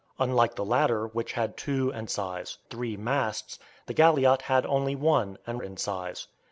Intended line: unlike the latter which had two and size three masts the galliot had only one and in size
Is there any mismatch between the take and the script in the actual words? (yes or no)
no